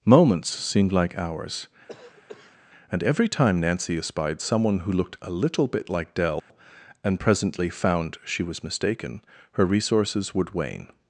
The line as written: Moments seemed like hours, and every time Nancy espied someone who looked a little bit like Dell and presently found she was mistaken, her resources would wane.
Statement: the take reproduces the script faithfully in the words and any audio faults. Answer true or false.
false